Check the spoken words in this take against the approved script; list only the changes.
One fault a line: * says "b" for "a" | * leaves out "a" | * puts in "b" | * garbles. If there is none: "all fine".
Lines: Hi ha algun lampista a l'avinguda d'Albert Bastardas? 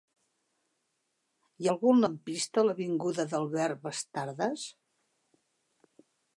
all fine